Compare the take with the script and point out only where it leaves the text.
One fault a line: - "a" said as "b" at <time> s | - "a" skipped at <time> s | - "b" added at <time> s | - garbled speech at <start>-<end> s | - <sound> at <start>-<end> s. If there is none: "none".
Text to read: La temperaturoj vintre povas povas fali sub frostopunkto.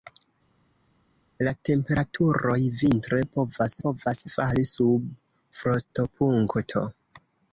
none